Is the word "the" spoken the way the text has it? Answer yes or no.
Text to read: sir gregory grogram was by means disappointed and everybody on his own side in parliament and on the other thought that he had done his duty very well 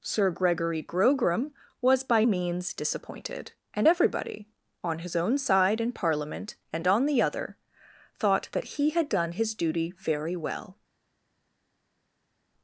yes